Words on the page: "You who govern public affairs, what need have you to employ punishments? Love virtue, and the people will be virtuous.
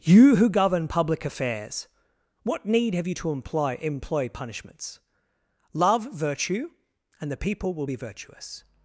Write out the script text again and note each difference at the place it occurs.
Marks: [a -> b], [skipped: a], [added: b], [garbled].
"You who govern public affairs, what need have you to employ [added: employ] punishments? Love virtue, and the people will be virtuous.